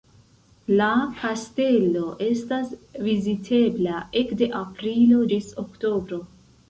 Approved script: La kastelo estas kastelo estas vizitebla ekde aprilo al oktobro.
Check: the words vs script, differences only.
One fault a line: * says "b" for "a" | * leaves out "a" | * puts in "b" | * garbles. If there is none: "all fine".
* leaves out "kastelo estas"
* says "ĝis" for "al"